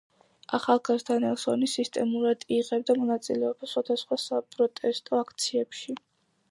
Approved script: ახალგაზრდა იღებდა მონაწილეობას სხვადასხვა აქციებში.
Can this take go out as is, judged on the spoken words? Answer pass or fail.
fail